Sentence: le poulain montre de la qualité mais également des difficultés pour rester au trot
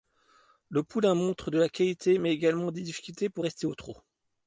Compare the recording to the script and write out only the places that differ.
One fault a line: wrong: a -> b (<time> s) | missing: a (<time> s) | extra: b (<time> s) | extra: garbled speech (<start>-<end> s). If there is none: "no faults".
no faults